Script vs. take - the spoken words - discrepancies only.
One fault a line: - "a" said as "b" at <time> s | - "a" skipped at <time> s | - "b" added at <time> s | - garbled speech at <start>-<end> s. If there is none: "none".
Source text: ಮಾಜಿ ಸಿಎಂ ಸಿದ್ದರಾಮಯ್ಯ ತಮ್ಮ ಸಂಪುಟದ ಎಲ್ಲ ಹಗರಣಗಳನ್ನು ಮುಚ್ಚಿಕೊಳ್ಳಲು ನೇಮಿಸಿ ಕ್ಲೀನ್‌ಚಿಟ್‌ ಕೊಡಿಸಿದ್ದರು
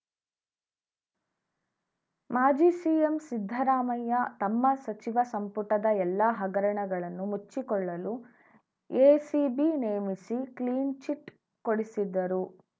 - "ಸಚಿವ" added at 4.8 s
- "ಎಸಿಬಿ" added at 8.9 s